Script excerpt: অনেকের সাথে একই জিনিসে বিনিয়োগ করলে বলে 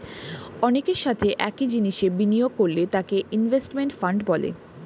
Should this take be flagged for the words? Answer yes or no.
yes